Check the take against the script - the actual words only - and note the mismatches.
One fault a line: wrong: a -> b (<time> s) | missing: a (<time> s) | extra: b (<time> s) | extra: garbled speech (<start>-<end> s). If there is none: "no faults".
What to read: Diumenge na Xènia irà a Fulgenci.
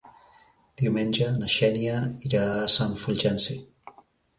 extra: Sant (2.8 s)